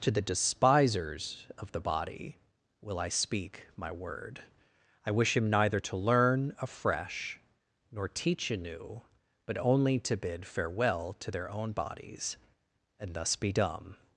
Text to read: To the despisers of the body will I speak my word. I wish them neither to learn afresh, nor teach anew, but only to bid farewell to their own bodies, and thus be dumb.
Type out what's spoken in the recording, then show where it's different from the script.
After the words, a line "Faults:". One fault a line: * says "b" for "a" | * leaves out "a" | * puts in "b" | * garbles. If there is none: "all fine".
To the despisers of the body will I speak my word. I wish him neither to learn afresh, nor teach anew, but only to bid farewell to their own bodies, and thus be dumb.
Faults:
* says "him" for "them"